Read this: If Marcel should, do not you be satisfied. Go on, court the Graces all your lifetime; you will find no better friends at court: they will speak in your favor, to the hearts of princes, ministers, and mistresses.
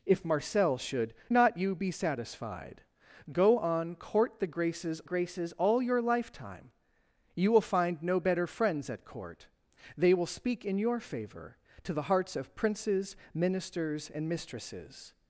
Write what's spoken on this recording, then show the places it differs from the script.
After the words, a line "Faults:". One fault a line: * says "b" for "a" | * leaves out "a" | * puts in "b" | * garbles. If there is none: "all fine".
If Marcel should, not you be satisfied. Go on, court the Graces Graces all your lifetime; you will find no better friends at court: they will speak in your favor, to the hearts of princes, ministers, and mistresses.
Faults:
* leaves out "do"
* puts in "Graces"